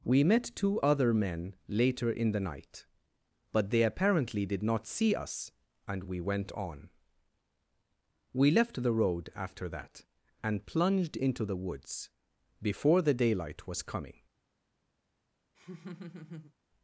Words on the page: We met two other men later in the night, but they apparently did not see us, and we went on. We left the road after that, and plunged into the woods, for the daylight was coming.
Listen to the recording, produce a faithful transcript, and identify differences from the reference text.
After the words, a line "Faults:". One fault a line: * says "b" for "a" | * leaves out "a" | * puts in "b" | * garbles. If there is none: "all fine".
We met two other men later in the night, but they apparently did not see us, and we went on. We left the road after that, and plunged into the woods, before the daylight was coming.
Faults:
* says "before" for "for"